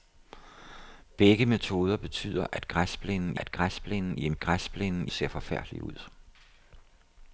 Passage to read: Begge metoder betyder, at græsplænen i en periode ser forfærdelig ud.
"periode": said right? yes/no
no